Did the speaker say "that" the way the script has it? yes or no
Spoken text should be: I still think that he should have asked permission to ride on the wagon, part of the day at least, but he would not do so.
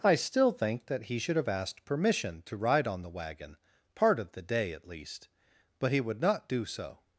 yes